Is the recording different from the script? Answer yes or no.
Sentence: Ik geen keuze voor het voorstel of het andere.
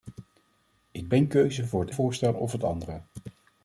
no